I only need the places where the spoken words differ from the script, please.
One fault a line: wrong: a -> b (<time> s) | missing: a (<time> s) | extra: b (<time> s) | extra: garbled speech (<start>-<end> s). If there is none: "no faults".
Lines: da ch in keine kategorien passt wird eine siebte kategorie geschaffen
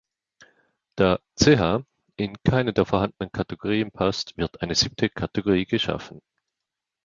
extra: der vorhandenen (2.7 s)